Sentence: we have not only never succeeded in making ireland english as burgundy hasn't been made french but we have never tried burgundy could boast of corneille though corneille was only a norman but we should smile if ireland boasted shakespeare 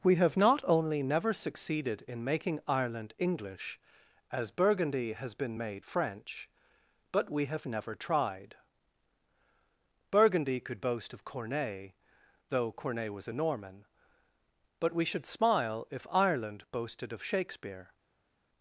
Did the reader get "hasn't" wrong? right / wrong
wrong